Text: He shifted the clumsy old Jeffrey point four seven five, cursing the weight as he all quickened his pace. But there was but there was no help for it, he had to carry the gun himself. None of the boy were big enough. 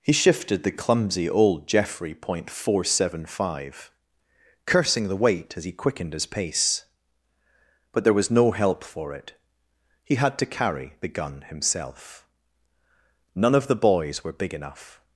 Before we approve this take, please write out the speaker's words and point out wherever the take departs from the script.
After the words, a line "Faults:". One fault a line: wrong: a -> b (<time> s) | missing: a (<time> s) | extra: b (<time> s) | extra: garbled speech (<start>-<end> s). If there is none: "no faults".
He shifted the clumsy old Jeffrey point four seven five, cursing the weight as he quickened his pace. But there was no help for it, he had to carry the gun himself. None of the boys were big enough.
Faults:
missing: all (5.7 s)
missing: but there was (8.3 s)
wrong: boy -> boys (13.8 s)